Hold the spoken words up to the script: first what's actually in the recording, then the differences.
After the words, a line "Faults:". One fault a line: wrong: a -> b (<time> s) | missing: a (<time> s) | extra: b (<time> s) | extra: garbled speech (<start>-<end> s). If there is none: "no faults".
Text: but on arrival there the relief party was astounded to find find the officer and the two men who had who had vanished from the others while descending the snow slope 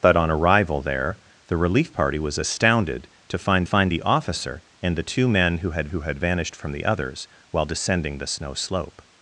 but on arrival there the relief party was astounded to find find the officer and the two men who had who had vanished from the others while descending the snow slope
Faults:
no faults